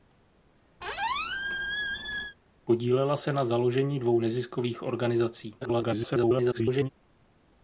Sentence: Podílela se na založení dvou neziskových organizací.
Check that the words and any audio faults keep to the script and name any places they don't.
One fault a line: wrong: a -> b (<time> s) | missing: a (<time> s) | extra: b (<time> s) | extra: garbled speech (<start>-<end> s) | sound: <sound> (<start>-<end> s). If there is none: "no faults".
sound: squeak (0.8-2.4 s)
extra: garbled speech (5.6-6.9 s)